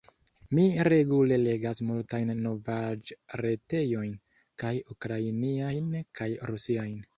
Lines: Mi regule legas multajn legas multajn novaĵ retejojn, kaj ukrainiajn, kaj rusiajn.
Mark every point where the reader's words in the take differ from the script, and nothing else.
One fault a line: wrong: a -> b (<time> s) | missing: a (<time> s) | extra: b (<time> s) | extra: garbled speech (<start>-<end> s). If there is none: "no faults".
missing: legas multajn (2.3 s)